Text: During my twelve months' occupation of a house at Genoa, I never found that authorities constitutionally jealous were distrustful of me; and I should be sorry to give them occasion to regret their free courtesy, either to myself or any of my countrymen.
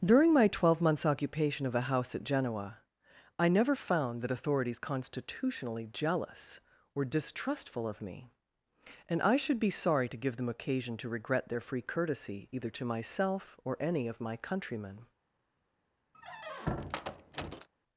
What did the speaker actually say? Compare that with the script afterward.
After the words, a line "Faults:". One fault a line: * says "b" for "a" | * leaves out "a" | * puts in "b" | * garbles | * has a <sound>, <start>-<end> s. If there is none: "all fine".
During my twelve months' occupation of a house at Genoa, I never found that authorities constitutionally jealous were distrustful of me; and I should be sorry to give them occasion to regret their free courtesy, either to myself or any of my countrymen.
Faults:
* has a squeak, 16.1-17.7 s